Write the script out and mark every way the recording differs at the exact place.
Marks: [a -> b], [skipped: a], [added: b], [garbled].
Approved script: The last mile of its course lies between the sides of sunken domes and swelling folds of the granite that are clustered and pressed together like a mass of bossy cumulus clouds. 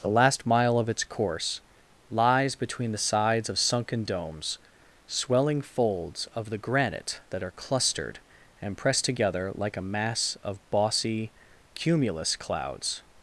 The last mile of its course lies between the sides of sunken domes [skipped: and] swelling folds of the granite that are clustered and pressed together like a mass of bossy cumulus clouds.